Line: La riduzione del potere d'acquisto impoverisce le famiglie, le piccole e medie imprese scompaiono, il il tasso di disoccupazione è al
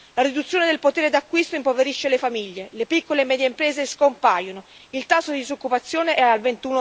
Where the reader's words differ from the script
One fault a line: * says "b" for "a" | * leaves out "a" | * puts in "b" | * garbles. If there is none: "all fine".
* leaves out "il"